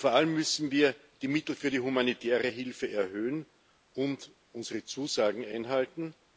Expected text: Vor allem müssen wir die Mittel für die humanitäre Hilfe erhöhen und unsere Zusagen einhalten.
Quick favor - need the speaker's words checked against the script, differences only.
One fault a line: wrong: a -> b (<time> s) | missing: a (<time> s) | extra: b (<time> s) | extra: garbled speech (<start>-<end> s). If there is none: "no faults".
no faults